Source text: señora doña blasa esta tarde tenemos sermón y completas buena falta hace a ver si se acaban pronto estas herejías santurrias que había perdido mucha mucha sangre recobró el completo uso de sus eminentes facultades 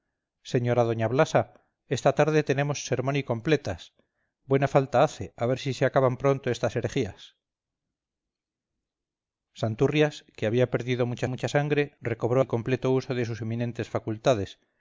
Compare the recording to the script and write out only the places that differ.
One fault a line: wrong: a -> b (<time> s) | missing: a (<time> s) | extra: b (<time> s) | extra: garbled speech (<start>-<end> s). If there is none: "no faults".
no faults